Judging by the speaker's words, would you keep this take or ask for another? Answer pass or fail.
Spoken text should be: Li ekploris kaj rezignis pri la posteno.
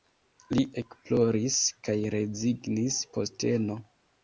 fail